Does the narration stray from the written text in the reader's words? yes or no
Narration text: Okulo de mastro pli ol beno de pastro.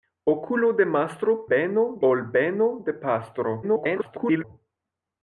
yes